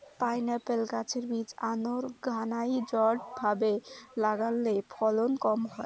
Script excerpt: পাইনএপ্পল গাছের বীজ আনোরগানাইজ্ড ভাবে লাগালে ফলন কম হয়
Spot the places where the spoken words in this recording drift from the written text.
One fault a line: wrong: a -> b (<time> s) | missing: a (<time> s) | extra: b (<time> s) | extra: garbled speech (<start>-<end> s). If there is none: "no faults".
no faults